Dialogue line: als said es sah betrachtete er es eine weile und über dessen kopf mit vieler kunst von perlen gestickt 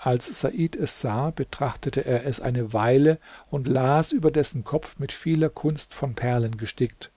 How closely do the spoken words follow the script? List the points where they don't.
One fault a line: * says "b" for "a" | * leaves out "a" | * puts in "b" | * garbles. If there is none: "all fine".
* puts in "las"